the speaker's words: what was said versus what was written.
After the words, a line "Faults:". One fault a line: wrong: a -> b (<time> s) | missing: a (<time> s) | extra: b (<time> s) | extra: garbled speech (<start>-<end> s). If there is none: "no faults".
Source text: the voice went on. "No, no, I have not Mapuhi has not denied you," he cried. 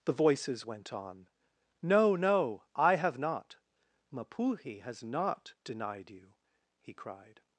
the voices went on. "No, no, I have not Mapuhi has not denied you," he cried.
Faults:
wrong: voice -> voices (0.1 s)